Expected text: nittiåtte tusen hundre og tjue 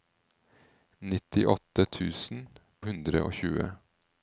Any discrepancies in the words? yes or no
no